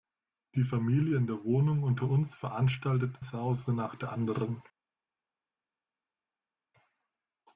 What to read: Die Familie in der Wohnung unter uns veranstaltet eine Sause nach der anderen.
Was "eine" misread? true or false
true